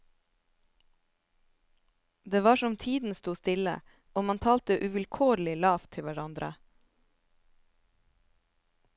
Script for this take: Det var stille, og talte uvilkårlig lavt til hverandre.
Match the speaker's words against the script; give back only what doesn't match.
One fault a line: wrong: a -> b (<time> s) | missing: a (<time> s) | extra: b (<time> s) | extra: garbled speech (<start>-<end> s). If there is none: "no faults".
extra: som tiden sto (2.5 s)
extra: man (4.2 s)